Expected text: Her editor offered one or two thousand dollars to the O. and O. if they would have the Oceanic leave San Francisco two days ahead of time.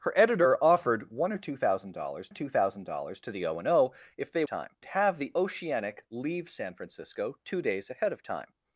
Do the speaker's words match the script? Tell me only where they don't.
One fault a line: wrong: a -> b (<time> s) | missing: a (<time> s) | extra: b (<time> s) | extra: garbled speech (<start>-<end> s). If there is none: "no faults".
extra: two thousand dollars (2.3 s)
wrong: would -> time (4.4 s)